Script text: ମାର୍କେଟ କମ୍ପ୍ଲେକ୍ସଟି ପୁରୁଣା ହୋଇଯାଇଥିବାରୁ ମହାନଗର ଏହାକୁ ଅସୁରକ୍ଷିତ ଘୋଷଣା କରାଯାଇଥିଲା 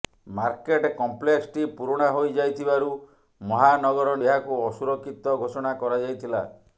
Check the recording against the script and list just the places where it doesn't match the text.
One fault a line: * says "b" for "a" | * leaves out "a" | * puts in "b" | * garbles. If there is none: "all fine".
all fine